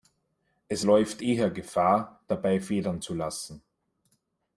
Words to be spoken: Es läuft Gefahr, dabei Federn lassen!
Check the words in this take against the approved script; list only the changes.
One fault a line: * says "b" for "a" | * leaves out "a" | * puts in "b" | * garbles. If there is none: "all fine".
* puts in "eher"
* puts in "zu"